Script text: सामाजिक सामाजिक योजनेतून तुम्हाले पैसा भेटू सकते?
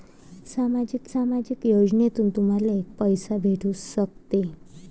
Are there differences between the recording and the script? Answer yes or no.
no